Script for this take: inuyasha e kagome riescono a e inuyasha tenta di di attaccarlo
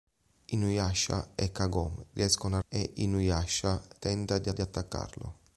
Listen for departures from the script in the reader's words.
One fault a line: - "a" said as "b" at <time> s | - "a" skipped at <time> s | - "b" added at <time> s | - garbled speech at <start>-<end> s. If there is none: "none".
none